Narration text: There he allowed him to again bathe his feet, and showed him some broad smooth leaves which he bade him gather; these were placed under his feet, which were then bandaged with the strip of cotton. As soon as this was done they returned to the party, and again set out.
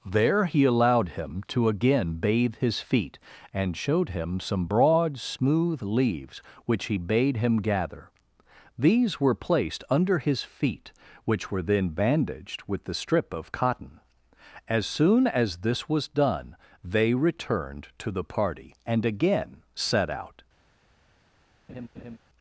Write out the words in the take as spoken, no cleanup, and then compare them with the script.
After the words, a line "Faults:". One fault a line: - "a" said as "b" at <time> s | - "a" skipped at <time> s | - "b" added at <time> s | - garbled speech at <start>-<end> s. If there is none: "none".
There he allowed him to again bathe his feet, and showed him some broad smooth leaves which he bade him gather; these were placed under his feet, which were then bandaged with the strip of cotton. As soon as this was done they returned to the party, and again set out.
Faults:
none